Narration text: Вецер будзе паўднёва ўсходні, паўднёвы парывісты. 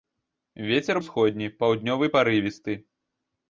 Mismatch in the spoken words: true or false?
true